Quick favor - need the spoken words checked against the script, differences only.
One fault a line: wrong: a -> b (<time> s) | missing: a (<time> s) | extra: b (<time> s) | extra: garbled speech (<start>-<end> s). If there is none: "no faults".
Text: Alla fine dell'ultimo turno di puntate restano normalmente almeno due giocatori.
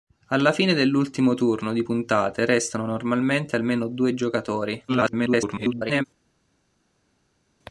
extra: garbled speech (4.9-6.0 s)